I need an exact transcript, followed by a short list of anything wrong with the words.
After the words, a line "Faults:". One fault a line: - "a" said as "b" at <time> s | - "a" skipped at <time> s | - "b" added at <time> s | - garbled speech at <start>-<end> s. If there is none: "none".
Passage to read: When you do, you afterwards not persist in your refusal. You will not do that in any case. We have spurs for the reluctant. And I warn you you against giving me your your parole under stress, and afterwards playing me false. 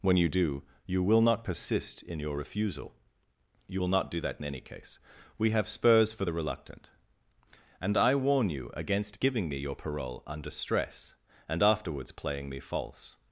When you do, you will not persist in your refusal. You will not do that in any case. We have spurs for the reluctant. And I warn you against giving me your parole under stress, and afterwards playing me false.
Faults:
- "afterwards" said as "will" at 1.0 s
- "you" skipped at 8.7 s
- "your" skipped at 9.7 s